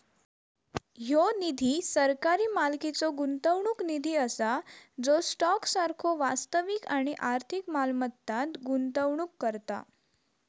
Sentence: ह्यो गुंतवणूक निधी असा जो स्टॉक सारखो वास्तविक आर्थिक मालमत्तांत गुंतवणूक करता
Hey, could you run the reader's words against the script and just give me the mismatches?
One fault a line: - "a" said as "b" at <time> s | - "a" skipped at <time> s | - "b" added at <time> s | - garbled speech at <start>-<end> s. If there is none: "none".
- "निधी सरकारी मालकीचो" added at 1.4 s
- "आणि" added at 7.0 s